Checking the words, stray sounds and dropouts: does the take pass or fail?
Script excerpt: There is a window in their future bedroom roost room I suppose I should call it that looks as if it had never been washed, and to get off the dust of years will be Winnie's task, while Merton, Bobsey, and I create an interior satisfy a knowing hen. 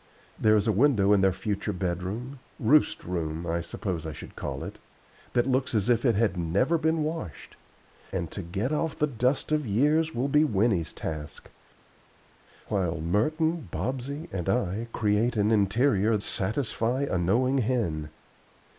pass